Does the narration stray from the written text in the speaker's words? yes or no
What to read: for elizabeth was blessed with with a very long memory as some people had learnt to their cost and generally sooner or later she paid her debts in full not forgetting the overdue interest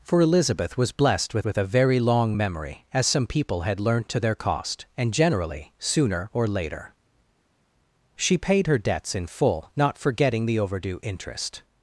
no